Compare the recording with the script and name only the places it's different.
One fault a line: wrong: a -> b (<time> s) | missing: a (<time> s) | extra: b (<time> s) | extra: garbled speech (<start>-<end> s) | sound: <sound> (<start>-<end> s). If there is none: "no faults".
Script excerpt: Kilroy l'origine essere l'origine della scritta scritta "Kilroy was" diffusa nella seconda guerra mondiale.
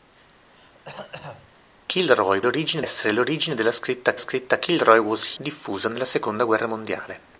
sound: throat clearing (0.5-1.6 s)